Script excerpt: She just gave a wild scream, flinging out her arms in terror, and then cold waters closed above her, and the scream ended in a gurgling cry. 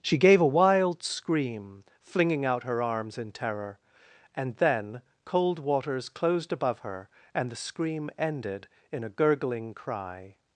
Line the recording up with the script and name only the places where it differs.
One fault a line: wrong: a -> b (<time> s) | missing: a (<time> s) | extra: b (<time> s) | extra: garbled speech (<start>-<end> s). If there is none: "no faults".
missing: just (0.2 s)